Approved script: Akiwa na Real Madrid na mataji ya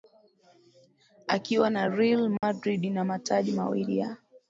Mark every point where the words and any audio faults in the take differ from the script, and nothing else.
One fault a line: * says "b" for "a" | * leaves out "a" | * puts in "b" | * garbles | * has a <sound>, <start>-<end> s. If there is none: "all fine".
* has a dropout, 2.4-2.4 s
* puts in "mawili"